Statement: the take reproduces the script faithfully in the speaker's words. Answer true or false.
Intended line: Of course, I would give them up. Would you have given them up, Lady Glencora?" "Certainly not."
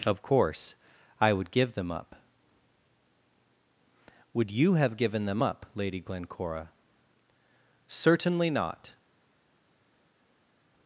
true